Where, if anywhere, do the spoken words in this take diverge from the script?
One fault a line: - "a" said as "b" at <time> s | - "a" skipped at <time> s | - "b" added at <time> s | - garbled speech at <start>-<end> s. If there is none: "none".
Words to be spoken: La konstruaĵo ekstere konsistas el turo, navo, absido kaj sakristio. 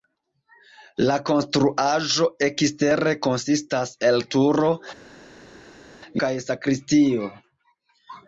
- "navo absido" skipped at 4.7 s